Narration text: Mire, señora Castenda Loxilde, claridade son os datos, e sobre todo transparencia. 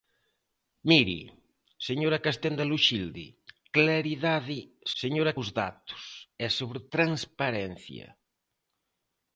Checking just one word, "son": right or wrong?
wrong